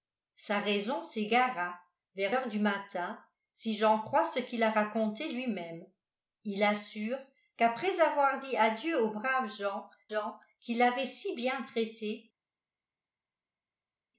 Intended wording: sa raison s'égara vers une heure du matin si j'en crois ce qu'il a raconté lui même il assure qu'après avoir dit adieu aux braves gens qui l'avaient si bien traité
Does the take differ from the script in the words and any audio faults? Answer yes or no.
yes